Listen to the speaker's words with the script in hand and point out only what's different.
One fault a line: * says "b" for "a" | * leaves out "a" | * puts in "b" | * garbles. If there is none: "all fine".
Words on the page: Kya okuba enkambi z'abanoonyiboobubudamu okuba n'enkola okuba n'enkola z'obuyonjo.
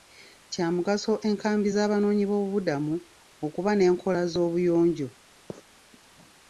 * says "mugaso" for "okuba"
* leaves out "okuba n'enkola"